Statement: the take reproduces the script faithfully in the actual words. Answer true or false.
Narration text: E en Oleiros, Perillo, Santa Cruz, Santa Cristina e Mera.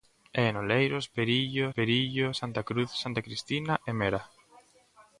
false